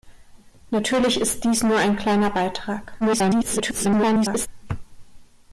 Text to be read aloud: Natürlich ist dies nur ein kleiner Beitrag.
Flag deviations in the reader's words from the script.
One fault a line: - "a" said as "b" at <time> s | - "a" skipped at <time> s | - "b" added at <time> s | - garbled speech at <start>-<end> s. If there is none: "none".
- garbled speech at 3.0-4.5 s